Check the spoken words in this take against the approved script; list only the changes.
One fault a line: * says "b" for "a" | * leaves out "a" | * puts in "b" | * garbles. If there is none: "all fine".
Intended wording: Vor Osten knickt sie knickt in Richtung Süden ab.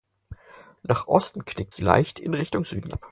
* says "Nach" for "Vor"
* says "leicht" for "knickt"